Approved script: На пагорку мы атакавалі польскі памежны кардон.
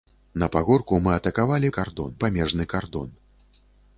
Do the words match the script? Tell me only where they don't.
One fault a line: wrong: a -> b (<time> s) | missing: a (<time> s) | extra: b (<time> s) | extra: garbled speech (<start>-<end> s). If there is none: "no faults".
wrong: польскі -> кардон (1.8 s)